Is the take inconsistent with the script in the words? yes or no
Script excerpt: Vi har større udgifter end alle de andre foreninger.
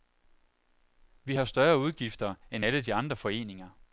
no